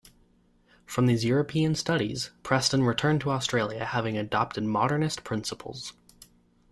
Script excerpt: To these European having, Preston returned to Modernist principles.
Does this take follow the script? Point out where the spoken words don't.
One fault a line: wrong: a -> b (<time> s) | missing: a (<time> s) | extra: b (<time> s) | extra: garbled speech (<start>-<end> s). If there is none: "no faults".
wrong: To -> From (0.8 s)
wrong: having -> studies (1.8 s)
extra: Australia having adopted (3.3 s)